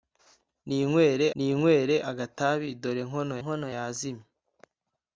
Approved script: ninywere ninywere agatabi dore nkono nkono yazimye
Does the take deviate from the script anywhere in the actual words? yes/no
no